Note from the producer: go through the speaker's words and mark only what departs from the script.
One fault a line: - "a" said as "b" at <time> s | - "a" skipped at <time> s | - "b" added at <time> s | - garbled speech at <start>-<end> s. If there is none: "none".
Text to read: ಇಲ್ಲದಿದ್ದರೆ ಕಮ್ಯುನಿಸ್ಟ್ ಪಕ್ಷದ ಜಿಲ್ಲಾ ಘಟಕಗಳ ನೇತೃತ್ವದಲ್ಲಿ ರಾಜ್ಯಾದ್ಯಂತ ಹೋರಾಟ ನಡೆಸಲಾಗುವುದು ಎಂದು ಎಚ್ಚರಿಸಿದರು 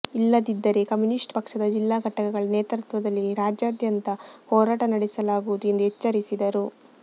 none